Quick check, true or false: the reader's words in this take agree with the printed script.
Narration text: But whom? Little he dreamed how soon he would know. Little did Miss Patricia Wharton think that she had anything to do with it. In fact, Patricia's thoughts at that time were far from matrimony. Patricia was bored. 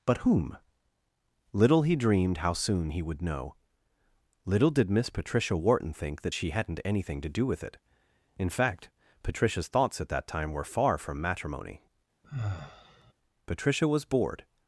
false